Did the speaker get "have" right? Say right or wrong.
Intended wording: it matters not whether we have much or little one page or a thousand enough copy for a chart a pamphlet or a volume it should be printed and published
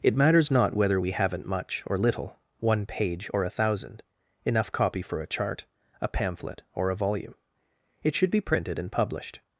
wrong